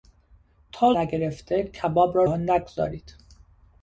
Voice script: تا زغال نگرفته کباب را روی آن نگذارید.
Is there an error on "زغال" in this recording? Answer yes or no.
yes